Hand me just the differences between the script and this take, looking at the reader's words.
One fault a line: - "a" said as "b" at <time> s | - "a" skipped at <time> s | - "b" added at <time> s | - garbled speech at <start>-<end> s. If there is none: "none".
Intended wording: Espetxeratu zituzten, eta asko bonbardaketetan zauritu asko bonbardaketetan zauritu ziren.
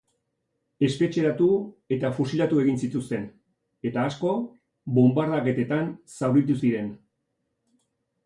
- "zituzten eta asko bonbardaketetan zauritu" said as "eta fusilatu egin zituzten eta" at 2.0 s